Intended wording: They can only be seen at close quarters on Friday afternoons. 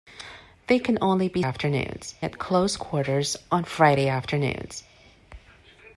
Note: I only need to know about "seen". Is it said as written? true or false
false